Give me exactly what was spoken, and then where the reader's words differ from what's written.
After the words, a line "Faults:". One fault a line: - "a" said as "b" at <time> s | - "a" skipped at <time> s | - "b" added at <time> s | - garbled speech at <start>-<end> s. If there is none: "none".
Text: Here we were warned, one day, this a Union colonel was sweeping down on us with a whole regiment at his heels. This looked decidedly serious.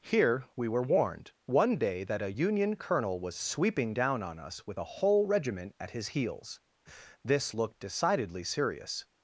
Here we were warned, one day, that a Union colonel was sweeping down on us with a whole regiment at his heels. This looked decidedly serious.
Faults:
- "this" said as "that" at 2.0 s